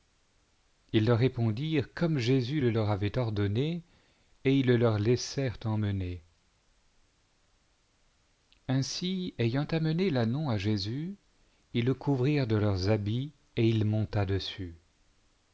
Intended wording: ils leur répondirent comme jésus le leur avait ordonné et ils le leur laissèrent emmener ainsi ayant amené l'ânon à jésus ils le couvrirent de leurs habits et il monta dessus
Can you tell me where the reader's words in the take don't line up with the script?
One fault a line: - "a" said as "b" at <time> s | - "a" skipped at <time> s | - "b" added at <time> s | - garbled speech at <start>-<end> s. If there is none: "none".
none